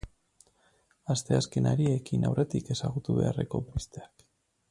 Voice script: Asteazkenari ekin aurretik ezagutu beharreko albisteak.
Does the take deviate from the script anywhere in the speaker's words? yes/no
no